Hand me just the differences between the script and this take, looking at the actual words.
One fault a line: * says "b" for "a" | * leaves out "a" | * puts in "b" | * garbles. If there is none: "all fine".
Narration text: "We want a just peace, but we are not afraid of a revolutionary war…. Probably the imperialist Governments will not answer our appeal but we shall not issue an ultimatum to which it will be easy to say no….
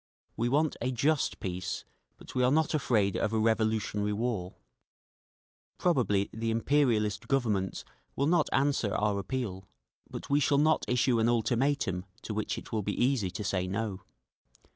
all fine